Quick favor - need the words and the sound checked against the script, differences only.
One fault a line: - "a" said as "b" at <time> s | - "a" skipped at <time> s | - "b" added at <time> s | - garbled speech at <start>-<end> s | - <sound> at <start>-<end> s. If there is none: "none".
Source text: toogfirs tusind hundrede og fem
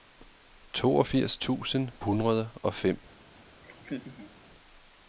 - laugh at 3.6-4.3 s